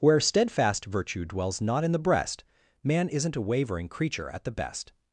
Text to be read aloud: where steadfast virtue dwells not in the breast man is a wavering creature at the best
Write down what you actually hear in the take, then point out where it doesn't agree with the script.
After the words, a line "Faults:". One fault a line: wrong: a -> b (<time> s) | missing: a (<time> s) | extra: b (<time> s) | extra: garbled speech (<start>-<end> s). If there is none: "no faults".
where steadfast virtue dwells not in the breast man isn't a wavering creature at the best
Faults:
wrong: is -> isn't (3.1 s)